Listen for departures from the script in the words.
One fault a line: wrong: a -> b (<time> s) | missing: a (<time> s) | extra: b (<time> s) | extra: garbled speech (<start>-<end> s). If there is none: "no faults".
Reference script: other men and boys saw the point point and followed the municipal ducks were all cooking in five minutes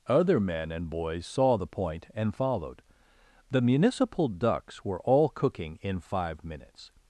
missing: point (2.1 s)